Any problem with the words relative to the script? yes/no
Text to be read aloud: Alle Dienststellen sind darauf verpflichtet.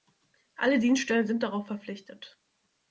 no